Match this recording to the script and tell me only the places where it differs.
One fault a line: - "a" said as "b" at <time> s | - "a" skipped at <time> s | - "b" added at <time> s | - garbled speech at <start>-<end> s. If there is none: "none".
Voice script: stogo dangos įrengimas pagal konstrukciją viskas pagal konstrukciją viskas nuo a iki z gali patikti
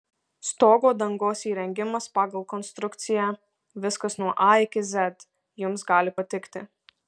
- "pagal konstrukciją viskas" skipped at 4.2 s
- "jums" added at 5.7 s